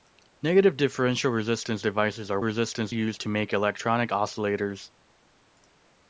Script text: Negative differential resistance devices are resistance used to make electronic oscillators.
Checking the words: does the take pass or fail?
pass